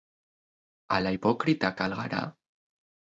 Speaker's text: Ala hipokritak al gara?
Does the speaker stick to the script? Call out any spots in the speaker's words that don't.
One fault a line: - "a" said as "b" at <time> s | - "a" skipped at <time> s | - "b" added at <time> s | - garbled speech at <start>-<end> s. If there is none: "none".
none